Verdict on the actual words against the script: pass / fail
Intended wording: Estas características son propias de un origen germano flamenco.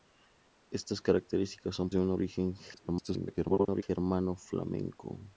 fail